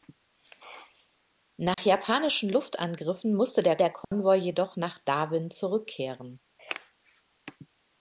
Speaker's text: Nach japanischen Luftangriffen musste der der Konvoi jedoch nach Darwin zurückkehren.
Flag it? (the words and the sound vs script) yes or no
yes